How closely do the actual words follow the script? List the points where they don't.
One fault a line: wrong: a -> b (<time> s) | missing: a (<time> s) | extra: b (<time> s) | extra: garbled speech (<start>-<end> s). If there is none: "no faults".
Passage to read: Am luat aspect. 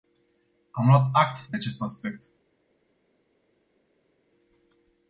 extra: act de acest (1.1 s)